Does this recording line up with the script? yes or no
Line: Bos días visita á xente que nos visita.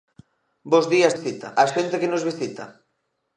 yes